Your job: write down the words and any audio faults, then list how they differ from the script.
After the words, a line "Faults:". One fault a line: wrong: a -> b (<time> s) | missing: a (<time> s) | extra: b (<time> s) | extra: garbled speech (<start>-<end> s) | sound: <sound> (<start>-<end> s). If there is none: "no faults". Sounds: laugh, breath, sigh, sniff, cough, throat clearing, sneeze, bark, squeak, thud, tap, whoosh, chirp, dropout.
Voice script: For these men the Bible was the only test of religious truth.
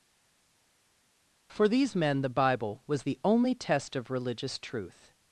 For these men the Bible was the only test of religious truth.
Faults:
no faults